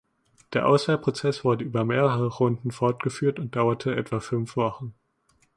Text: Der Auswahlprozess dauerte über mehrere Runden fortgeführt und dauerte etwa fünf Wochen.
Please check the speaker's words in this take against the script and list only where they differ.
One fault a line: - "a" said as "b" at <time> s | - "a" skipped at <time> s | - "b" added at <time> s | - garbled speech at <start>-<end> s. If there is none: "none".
- "dauerte" said as "wurde" at 1.4 s